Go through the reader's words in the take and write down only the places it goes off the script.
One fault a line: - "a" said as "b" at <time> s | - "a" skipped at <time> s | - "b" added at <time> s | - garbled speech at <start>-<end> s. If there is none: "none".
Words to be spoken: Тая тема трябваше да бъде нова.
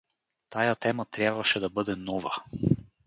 none